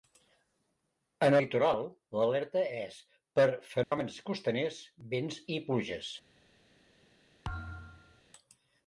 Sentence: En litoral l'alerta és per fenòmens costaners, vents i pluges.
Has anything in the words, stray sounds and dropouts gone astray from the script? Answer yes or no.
yes